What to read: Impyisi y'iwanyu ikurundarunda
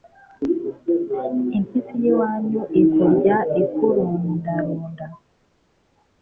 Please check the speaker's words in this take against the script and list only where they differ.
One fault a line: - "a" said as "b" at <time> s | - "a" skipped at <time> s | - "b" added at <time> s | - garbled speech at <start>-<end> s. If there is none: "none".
- "ikurya" added at 2.8 s